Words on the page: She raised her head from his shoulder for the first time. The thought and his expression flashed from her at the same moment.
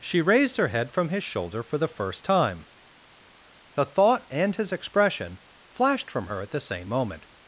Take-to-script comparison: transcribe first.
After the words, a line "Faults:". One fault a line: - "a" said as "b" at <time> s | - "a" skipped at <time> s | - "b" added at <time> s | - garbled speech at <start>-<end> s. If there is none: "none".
She raised her head from his shoulder for the first time. The thought and his expression flashed from her at the same moment.
Faults:
none